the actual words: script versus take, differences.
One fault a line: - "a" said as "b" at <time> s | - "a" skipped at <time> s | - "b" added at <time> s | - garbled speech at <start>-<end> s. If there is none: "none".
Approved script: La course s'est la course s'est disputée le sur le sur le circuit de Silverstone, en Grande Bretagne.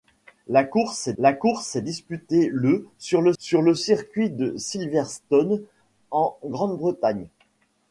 none